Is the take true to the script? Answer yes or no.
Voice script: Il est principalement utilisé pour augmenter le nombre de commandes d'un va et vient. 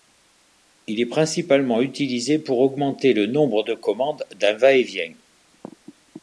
yes